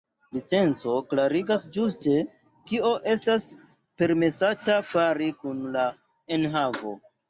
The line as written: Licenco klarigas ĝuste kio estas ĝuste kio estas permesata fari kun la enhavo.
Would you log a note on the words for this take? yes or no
yes